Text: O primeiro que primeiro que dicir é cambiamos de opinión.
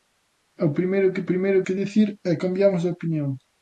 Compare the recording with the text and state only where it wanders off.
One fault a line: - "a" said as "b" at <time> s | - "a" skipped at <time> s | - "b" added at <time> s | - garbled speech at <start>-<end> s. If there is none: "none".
none